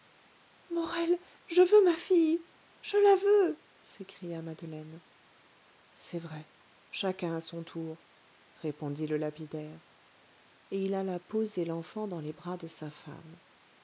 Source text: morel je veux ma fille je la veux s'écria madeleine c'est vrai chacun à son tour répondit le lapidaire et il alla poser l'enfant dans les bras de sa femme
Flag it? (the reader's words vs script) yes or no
no